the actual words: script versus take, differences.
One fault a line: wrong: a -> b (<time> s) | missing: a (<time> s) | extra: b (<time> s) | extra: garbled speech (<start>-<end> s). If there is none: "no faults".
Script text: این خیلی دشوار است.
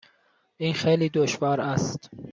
no faults